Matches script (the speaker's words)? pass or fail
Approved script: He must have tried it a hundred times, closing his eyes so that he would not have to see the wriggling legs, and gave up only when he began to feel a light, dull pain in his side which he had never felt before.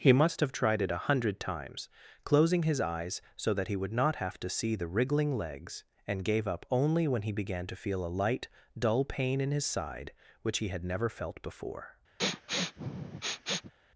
pass